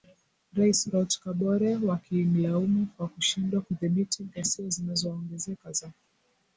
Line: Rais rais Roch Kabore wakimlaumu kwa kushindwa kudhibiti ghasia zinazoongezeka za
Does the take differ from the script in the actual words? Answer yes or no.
yes